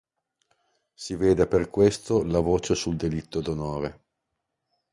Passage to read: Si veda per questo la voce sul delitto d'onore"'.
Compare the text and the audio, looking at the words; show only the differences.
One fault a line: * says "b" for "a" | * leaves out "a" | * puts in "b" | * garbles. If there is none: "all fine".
all fine